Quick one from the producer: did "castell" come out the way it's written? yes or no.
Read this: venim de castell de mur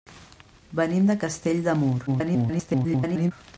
yes